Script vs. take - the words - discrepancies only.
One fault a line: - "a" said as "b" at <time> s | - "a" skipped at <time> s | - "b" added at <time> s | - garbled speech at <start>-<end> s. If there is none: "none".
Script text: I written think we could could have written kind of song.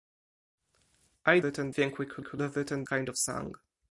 none